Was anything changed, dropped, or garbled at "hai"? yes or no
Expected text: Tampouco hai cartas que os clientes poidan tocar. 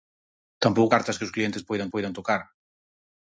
yes